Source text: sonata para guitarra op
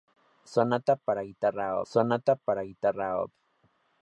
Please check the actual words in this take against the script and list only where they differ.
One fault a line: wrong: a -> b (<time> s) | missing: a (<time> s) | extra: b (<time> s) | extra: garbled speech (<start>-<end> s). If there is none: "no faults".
extra: sonata para guitarra (1.9 s)